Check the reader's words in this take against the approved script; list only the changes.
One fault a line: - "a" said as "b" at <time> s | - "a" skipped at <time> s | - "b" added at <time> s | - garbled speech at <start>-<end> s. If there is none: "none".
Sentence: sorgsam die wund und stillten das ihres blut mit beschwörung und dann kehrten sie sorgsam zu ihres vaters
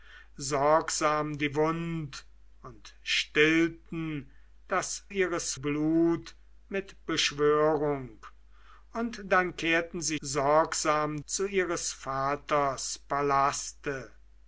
none